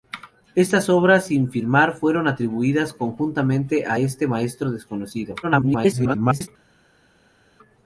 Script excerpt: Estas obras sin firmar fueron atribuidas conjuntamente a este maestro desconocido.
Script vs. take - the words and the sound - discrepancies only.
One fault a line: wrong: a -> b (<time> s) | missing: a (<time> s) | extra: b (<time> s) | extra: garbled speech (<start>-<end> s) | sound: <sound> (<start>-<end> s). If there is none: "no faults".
extra: garbled speech (5.4-6.5 s)